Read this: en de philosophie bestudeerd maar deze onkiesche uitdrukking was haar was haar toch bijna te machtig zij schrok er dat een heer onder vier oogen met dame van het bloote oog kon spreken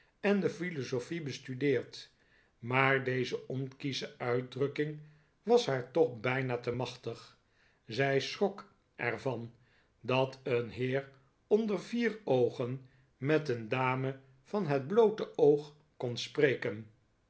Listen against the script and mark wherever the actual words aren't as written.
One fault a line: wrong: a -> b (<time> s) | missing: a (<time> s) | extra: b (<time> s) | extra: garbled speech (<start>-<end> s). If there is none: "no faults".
missing: was haar (5.9 s)
extra: van (9.2 s)
extra: een (13.5 s)